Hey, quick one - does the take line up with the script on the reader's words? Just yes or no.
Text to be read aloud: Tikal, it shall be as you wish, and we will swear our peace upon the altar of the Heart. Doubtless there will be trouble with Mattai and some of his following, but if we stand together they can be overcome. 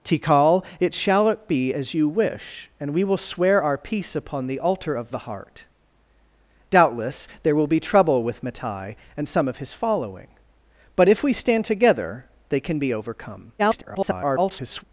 no